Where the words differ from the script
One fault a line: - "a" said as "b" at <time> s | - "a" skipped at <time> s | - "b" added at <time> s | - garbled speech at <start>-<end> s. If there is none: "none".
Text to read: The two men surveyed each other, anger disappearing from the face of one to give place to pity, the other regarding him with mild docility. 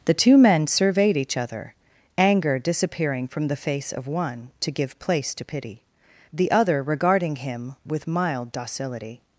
none